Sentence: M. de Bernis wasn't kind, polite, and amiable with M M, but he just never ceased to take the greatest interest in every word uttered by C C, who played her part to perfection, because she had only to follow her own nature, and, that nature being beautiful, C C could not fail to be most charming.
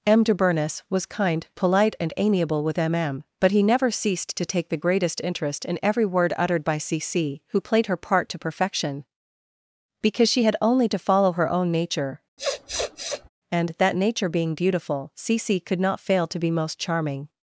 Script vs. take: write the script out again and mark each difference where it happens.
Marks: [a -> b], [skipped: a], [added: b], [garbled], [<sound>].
M. de Bernis [wasn't -> was] kind, polite, and amiable with M M, but he [skipped: just] never ceased to take the greatest interest in every word uttered by C C, who played her part to perfection, because she had only to follow her own nature, [sniff] and, that nature being beautiful, C C could not fail to be most charming.